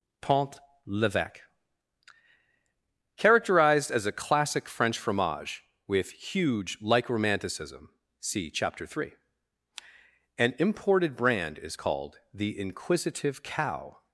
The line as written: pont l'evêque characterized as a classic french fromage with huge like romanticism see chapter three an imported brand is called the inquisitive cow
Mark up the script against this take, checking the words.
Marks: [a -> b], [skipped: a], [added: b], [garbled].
pont l'evêque characterized as a classic french fromage with huge like romanticism see chapter three an imported brand is called the inquisitive cow